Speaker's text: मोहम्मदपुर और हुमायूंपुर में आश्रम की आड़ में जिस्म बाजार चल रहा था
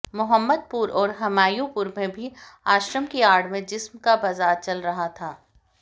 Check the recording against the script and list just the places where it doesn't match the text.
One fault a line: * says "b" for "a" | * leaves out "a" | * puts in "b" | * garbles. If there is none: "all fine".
* puts in "भी"
* puts in "का"